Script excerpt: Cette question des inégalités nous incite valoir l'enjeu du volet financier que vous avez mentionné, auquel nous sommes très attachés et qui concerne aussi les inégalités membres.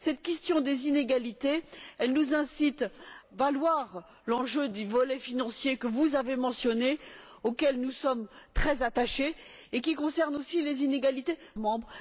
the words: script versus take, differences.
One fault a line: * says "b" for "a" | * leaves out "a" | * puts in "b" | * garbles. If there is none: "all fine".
all fine